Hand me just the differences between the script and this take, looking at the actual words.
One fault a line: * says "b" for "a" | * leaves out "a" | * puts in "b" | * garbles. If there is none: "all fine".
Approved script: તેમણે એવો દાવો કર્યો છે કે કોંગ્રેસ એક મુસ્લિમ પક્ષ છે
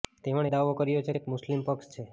* leaves out "એવો"
* leaves out "કે કોંગ્રેસ"